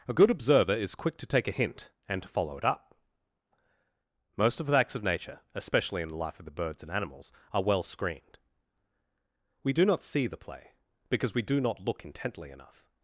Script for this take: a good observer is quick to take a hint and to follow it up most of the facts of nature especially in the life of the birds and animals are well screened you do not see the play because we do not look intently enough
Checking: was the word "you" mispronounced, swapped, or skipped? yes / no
yes